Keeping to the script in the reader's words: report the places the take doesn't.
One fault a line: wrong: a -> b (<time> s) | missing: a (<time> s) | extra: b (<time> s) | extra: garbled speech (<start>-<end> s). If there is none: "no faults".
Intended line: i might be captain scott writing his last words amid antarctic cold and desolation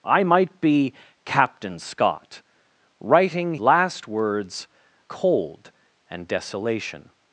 missing: his (3.5 s)
missing: amid antarctic (4.7 s)